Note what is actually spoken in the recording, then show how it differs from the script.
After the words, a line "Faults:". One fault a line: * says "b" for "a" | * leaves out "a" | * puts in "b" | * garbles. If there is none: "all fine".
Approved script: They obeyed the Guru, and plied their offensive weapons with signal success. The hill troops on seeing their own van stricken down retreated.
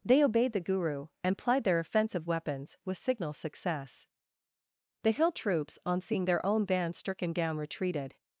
They obeyed the Guru, and plied their offensive weapons with signal success. The hill troops on seeing their own band stricken down retreated.
Faults:
* says "band" for "van"